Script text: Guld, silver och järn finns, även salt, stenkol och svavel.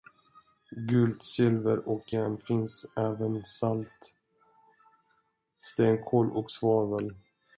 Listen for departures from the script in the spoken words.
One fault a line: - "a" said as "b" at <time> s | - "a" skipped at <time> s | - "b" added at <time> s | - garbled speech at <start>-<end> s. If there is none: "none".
none